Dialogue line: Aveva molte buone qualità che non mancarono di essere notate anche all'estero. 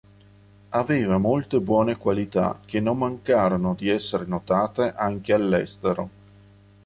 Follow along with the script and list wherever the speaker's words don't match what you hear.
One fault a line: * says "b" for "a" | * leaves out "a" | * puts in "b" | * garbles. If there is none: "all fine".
all fine